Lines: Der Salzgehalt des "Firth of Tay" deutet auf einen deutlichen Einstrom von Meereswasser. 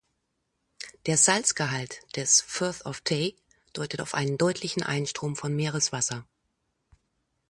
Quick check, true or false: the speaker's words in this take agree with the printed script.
true